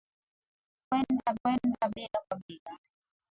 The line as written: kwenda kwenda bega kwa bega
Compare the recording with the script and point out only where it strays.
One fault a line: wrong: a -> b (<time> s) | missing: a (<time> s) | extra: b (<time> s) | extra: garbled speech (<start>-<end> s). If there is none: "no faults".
no faults